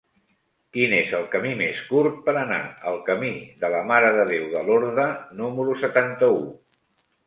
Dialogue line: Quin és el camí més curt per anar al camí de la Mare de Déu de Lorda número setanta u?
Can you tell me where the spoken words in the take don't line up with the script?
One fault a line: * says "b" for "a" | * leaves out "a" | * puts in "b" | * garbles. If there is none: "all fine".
all fine